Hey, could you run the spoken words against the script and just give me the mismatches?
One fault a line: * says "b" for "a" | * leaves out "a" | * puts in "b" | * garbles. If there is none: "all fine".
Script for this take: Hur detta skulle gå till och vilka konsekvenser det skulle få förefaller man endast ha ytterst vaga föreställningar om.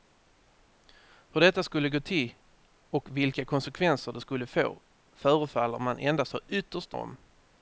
* leaves out "vaga föreställningar"